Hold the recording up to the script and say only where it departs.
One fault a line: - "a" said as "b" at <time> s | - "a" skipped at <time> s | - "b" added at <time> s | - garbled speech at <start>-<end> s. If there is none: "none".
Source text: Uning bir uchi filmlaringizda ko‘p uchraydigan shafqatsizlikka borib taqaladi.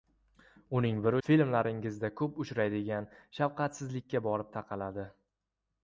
- "uchi" skipped at 1.2 s